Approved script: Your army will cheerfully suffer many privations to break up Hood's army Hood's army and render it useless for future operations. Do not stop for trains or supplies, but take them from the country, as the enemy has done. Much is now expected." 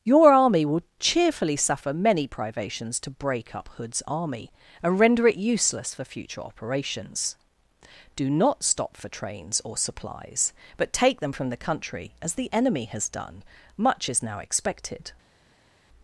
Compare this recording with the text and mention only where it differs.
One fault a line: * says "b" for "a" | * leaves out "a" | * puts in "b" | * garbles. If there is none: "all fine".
* leaves out "Hood's army"